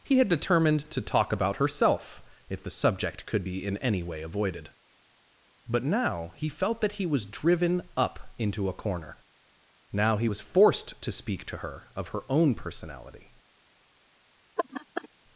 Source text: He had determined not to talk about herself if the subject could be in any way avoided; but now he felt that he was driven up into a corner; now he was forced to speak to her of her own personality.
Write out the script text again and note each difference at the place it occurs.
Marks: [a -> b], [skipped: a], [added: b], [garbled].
He had determined [skipped: not] to talk about herself if the subject could be in any way avoided; but now he felt that he was driven up into a corner; now he was forced to speak to her of her own personality.